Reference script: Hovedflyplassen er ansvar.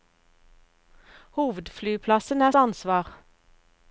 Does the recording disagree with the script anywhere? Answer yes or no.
no